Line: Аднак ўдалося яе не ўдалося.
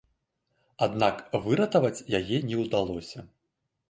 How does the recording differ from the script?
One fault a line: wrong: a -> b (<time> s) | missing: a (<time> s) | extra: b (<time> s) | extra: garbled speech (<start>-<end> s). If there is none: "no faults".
wrong: ўдалося -> выратаваць (1.5 s)